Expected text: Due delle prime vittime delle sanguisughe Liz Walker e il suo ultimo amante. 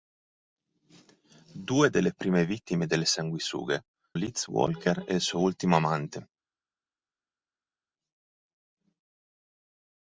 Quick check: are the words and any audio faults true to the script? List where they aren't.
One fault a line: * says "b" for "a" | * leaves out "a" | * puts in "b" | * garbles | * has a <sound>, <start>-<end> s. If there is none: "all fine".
all fine